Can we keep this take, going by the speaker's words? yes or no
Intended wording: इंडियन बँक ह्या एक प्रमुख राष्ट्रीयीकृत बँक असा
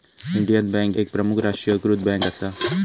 no